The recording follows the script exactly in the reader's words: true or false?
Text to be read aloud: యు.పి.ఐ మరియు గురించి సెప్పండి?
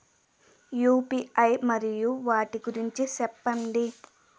false